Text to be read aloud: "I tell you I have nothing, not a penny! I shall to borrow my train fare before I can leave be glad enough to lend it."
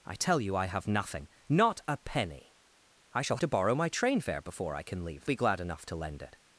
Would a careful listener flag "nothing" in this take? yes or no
no